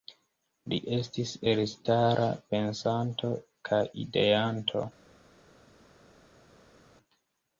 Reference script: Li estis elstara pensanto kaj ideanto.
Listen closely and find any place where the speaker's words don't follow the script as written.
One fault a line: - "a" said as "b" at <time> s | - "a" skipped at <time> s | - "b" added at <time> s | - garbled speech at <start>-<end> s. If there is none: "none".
none